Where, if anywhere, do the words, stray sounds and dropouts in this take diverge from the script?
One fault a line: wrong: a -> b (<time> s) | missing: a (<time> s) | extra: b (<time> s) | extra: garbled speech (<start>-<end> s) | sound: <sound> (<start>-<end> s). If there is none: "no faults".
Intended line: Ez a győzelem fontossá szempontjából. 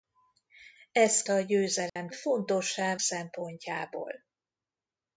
sound: dropout (1.9-2.0 s)